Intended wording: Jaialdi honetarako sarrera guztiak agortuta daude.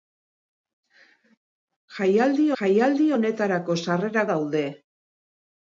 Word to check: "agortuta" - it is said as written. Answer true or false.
false